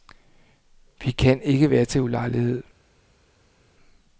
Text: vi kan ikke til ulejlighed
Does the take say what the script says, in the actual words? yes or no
no